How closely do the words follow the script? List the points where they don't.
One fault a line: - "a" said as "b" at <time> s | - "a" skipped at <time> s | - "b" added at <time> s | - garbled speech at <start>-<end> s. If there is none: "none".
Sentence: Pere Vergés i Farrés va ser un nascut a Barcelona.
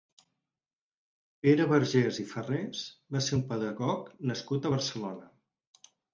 - "pedagog" added at 3.5 s